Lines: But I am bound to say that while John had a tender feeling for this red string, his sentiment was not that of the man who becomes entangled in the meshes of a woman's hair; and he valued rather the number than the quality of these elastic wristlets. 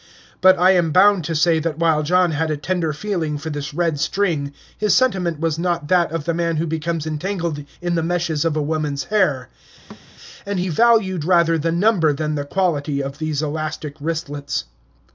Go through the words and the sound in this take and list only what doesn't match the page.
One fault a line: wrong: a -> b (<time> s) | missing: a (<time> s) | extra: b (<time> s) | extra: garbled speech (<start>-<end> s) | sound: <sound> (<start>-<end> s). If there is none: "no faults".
sound: thud (9.9-10.1 s)